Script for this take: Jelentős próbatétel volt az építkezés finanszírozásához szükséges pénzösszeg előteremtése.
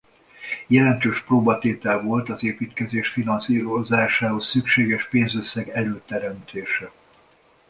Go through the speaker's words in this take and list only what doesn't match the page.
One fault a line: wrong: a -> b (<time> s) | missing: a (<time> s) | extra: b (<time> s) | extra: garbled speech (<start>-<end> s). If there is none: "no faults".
no faults